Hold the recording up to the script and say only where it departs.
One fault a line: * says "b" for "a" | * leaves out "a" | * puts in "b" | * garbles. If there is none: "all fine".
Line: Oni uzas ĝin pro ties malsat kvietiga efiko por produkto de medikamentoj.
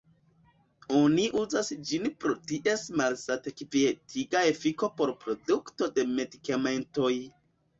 all fine